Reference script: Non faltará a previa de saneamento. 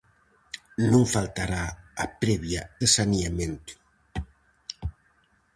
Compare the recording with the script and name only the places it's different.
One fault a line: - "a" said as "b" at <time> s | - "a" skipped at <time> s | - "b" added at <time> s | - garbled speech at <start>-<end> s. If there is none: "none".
none